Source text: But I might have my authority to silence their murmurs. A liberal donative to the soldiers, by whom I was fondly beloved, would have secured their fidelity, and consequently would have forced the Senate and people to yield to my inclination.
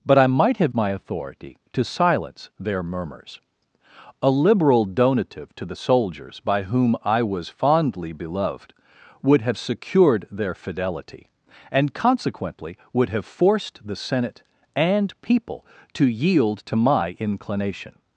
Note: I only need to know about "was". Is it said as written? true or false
true